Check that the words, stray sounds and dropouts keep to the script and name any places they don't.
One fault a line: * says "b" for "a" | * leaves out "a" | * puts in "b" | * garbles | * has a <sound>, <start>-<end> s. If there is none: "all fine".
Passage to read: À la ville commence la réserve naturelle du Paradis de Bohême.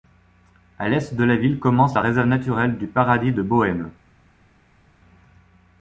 * puts in "l'est de"